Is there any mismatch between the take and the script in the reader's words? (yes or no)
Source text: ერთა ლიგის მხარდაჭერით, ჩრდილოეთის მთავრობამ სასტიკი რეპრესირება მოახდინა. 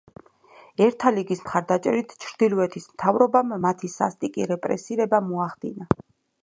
yes